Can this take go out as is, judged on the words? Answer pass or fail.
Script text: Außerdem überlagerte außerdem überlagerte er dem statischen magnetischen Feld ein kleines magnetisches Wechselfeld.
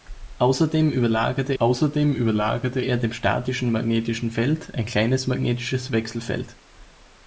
pass